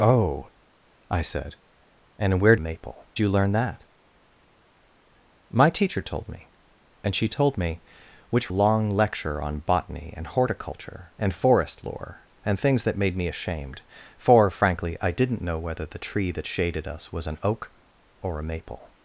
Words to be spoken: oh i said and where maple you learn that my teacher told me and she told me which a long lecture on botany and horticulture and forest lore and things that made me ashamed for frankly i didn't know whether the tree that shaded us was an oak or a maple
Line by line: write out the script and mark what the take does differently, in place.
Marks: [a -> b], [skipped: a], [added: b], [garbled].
oh i said and where maple you learn that my teacher told me and she told me which a long lecture on botany and horticulture and forest lore and things that made me ashamed for frankly i didn't know whether the tree that shaded us was an oak or a maple